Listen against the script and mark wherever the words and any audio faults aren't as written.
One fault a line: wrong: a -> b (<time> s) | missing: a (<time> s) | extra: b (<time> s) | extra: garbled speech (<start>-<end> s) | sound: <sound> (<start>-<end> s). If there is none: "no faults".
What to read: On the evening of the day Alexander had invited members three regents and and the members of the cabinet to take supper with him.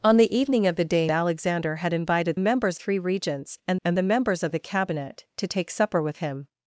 no faults